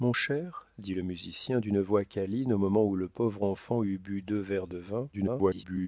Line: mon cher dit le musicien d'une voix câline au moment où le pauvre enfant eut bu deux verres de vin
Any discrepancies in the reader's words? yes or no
yes